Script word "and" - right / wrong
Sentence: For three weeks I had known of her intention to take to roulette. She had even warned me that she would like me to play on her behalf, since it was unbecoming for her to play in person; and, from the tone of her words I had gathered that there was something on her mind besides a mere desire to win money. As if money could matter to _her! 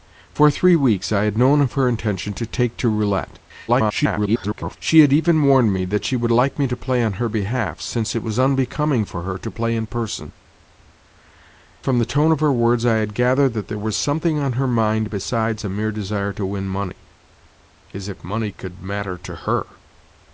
wrong